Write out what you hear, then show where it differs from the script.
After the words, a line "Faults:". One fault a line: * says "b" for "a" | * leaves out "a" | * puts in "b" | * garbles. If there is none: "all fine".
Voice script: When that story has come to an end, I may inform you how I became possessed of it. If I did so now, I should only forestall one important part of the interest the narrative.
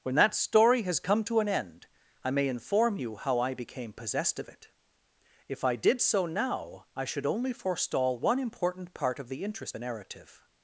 When that story has come to an end, I may inform you how I became possessed of it. If I did so now, I should only forestall one important part of the interest the narrative.
Faults:
all fine